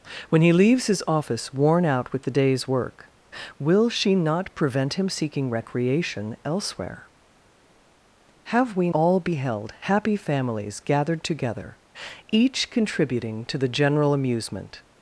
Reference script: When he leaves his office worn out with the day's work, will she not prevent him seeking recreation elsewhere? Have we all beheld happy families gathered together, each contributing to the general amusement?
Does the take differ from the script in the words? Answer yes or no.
no